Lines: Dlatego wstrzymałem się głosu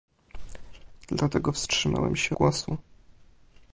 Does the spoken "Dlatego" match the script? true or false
true